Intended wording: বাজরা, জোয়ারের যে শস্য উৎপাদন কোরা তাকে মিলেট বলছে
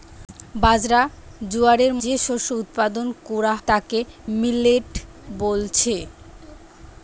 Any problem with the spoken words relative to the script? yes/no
no